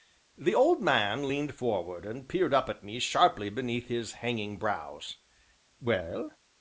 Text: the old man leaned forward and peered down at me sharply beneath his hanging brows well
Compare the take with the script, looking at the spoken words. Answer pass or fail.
fail